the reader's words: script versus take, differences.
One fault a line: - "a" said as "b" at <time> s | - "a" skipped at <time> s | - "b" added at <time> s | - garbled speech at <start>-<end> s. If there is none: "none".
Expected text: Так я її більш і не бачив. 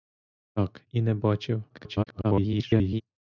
- "я її більш" skipped at 0.8 s
- garbled speech at 1.7-3.0 s